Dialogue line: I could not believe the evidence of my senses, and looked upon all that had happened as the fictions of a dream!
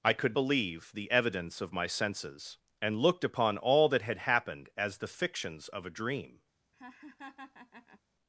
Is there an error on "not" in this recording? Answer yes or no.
yes